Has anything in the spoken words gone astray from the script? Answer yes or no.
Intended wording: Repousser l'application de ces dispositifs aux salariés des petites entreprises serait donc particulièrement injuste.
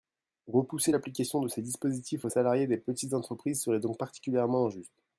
no